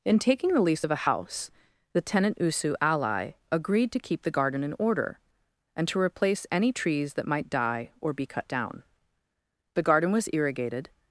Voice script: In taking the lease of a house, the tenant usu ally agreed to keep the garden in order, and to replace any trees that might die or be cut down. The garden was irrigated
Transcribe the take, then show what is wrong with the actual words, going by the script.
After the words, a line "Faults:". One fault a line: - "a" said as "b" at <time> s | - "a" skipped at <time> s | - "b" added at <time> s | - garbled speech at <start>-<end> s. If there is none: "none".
In taking the lease of a house, the tenant usu ally agreed to keep the garden in order, and to replace any trees that might die or be cut down. The garden was irrigated
Faults:
none